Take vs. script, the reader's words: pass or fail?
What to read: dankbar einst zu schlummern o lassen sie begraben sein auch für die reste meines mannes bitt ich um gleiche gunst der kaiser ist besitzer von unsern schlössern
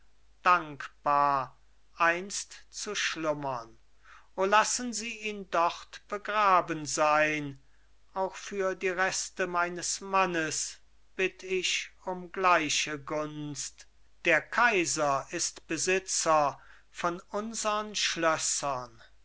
fail